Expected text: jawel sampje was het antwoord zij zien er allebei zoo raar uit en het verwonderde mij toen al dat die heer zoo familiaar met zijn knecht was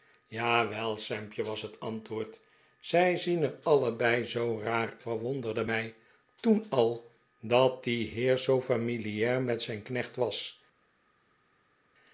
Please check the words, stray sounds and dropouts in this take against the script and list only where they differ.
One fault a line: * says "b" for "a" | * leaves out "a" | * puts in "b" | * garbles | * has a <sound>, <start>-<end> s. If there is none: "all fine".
* leaves out "uit en het"